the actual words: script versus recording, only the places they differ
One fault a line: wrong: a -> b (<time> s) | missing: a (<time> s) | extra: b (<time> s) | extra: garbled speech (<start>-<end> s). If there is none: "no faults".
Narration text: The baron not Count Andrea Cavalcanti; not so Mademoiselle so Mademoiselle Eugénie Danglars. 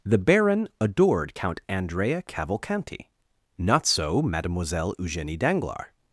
wrong: not -> adored (0.8 s)
missing: so Mademoiselle (4.9 s)